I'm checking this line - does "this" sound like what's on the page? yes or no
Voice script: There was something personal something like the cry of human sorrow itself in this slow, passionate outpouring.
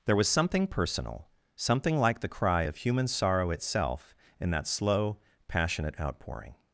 no